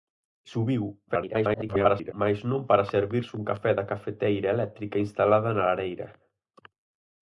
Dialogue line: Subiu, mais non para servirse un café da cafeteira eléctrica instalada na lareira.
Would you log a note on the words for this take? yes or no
yes